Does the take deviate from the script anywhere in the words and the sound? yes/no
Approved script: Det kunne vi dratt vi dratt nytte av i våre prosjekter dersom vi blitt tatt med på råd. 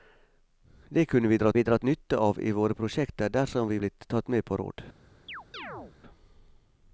yes